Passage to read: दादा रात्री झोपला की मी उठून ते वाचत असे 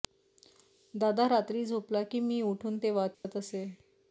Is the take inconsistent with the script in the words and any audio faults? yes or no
yes